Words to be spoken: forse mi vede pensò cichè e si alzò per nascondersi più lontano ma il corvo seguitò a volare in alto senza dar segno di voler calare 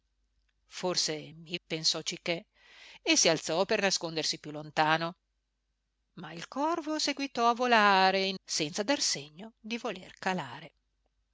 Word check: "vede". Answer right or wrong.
wrong